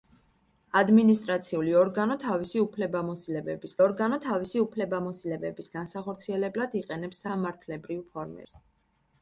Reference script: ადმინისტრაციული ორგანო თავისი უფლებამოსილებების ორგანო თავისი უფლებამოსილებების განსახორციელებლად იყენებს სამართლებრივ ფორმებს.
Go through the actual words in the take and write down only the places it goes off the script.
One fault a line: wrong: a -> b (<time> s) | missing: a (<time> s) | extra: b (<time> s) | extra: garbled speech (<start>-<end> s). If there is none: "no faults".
no faults